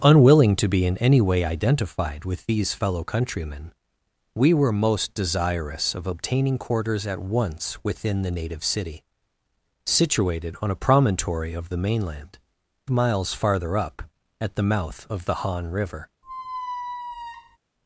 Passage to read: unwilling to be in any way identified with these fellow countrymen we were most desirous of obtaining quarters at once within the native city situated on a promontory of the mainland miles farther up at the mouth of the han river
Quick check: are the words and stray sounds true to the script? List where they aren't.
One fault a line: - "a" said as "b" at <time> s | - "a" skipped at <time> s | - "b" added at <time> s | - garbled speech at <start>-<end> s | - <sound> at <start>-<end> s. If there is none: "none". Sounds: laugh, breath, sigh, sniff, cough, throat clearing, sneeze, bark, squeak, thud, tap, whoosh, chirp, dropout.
- squeak at 16.2-17.6 s